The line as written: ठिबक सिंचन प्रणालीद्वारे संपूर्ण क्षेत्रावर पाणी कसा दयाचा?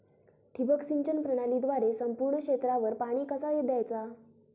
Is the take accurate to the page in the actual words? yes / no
yes